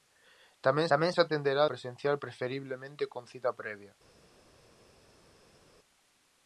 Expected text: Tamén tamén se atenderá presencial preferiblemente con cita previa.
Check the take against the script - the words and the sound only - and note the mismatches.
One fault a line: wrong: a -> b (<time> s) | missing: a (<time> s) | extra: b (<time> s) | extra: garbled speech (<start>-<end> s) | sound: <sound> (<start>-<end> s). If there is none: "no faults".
no faults